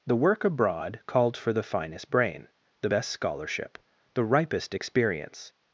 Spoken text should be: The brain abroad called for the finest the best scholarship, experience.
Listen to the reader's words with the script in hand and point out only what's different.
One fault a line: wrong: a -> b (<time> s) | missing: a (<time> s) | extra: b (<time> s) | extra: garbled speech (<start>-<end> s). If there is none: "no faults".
wrong: brain -> work (0.1 s)
extra: brain (2.1 s)
extra: the ripest (4.1 s)